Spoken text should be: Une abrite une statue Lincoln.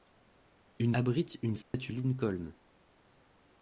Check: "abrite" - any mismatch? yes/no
no